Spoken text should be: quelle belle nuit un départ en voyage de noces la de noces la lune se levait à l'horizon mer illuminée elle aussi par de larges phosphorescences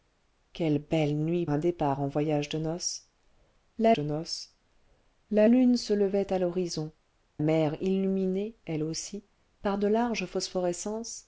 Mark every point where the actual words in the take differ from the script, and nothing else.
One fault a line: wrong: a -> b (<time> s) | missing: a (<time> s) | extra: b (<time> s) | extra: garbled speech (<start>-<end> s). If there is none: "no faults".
no faults